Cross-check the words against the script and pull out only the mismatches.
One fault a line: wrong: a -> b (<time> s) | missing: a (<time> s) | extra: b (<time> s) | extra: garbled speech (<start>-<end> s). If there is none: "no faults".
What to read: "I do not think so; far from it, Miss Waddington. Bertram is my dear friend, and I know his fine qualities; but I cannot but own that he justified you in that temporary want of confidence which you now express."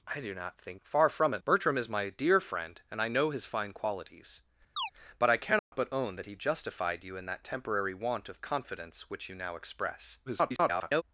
missing: so (0.8 s)
missing: Miss Waddington (1.4 s)
extra: garbled speech (10.3-11.0 s)